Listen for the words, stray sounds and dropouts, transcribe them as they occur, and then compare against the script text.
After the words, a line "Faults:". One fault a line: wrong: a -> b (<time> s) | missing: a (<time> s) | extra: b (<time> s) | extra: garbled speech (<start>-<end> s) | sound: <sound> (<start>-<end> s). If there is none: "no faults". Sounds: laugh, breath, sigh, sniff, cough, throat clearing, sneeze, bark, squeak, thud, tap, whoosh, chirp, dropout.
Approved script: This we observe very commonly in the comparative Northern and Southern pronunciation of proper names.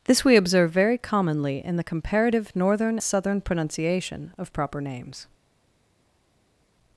This we observe very commonly in the comparative Northern Southern pronunciation of proper names.
Faults:
missing: and (3.0 s)